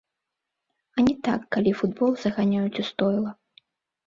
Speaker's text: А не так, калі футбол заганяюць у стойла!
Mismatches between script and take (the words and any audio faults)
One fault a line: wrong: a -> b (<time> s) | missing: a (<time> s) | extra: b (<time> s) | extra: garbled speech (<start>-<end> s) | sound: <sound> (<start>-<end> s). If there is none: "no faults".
no faults